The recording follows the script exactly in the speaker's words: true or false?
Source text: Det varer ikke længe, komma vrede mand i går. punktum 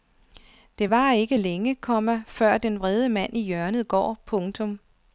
false